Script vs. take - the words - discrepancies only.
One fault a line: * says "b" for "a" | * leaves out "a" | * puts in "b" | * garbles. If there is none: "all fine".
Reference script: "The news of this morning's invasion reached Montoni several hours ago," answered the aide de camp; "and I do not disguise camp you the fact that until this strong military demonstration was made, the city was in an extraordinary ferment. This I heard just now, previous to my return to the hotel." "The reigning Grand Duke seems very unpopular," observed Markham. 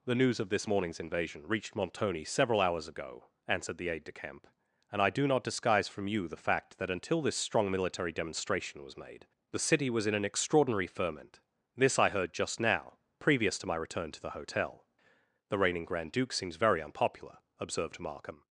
* says "from" for "camp"